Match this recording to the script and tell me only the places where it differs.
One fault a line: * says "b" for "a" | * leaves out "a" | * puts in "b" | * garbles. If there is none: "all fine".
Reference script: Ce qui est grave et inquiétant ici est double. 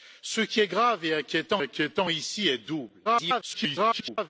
* puts in "inquiétant"
* garbles